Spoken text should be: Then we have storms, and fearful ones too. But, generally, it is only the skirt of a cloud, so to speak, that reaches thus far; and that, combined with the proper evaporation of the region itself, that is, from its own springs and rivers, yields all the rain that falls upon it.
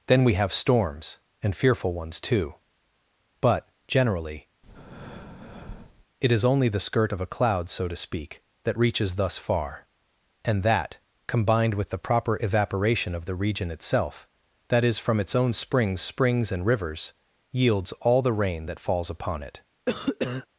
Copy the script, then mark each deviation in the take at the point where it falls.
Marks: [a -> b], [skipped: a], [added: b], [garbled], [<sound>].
Then we have storms, and fearful ones too. But, generally, [breath] it is only the skirt of a cloud, so to speak, that reaches thus far; and that, combined with the proper evaporation of the region itself, that is, from its own springs [added: springs] and rivers, yields all the rain that falls upon it. [cough]